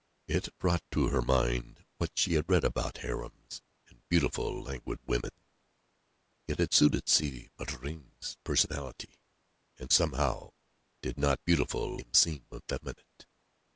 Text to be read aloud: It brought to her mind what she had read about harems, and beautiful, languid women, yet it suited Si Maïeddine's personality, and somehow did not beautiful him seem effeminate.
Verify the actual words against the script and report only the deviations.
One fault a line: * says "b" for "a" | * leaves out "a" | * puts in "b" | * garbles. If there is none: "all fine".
all fine